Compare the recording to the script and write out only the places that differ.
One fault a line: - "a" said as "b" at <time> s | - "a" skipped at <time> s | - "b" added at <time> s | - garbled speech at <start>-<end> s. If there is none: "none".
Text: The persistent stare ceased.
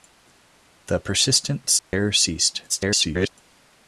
- garbled speech at 2.7-3.3 s